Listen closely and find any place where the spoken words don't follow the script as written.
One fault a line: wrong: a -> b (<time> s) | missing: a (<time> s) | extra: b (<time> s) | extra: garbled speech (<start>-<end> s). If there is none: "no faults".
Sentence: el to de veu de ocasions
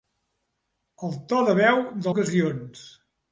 no faults